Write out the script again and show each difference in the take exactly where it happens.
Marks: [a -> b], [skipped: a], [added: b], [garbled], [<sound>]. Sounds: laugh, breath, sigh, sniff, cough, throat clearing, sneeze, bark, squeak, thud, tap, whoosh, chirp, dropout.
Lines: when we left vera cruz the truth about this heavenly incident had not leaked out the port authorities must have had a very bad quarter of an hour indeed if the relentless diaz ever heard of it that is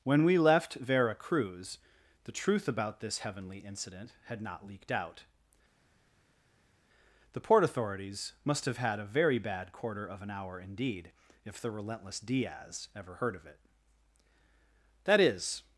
when we left vera cruz the truth about this heavenly incident had not leaked out the port authorities must have had a very bad quarter of an hour indeed if the relentless diaz ever heard of it that is